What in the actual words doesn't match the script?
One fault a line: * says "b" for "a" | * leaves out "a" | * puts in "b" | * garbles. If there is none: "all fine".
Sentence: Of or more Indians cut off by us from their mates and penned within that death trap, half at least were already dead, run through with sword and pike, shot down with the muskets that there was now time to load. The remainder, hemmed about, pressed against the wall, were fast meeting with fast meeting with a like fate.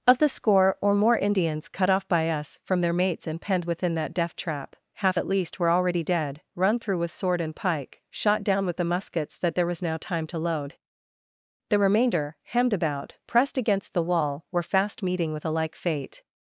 * puts in "the score"
* leaves out "fast meeting with"